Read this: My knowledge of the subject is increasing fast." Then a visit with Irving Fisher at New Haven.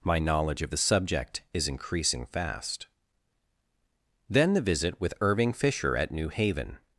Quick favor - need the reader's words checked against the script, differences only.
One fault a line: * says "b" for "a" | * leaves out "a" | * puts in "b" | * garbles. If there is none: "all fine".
* says "the" for "a"